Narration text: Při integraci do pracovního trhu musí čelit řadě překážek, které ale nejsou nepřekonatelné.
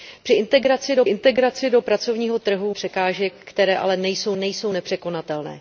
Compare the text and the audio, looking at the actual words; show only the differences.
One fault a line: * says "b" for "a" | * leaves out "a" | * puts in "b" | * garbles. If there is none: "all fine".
* puts in "integraci do"
* leaves out "musí čelit řadě"
* puts in "nejsou"